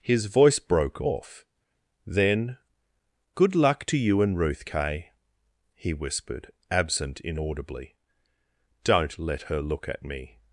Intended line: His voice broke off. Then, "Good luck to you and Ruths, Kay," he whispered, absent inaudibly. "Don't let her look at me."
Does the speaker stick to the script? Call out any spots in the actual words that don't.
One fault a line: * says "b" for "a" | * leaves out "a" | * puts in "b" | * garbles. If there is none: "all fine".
* says "Ruth" for "Ruths"